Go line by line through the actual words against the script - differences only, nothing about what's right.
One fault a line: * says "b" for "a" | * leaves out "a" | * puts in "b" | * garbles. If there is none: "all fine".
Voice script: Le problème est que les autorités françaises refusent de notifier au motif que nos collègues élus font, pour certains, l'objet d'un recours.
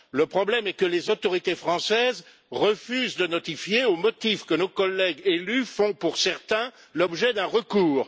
all fine